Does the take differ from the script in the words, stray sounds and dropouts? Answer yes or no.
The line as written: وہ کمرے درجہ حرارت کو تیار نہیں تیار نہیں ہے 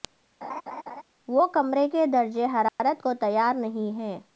yes